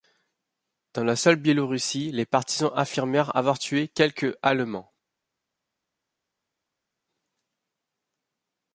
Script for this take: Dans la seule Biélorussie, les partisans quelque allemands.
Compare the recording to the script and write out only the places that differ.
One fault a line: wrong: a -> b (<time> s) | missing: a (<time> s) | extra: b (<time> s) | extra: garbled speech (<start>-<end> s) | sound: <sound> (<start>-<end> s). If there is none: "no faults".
extra: affirmèrent avoir tué (2.8 s)